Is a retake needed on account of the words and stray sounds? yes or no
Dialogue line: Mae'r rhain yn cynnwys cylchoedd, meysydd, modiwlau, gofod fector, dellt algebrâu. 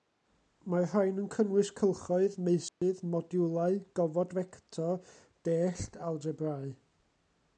yes